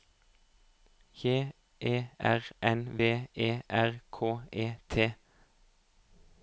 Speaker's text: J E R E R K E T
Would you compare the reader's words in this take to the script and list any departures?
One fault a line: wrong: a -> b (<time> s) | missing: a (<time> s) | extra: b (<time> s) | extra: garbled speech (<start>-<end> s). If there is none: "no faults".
extra: N V (2.6 s)